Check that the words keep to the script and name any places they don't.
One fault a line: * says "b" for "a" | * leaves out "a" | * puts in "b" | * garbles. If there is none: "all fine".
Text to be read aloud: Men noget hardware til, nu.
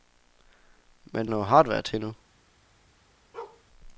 all fine